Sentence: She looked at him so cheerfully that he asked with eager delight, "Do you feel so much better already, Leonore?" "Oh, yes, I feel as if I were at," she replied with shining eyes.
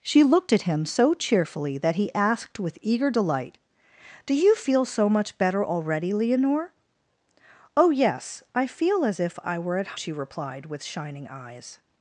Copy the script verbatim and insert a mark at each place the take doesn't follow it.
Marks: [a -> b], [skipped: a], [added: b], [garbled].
She looked at him so cheerfully that he asked with eager delight, "Do you feel so much better already, Leonore?" "Oh, yes, I feel as if I were at," she replied with shining eyes.